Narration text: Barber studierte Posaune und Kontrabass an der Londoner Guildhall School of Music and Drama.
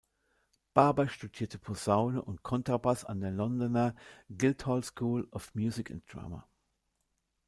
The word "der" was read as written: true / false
true